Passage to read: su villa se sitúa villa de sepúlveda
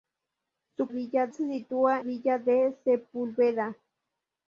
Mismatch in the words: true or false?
false